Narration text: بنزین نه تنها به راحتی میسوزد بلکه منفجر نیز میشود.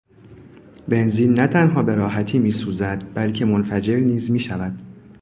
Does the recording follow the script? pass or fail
pass